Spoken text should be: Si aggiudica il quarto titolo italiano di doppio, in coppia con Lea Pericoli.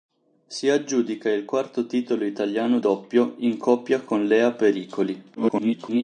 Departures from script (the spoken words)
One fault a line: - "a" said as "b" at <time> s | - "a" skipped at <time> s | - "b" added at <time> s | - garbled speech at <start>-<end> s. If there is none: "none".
- "di" skipped at 2.8 s
- garbled speech at 5.4-6.0 s